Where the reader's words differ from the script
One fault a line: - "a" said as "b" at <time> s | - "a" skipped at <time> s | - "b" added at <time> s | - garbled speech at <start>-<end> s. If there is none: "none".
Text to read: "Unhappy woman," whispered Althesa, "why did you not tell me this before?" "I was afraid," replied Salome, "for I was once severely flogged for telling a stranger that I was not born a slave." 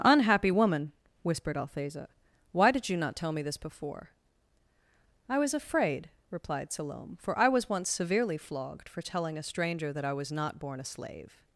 none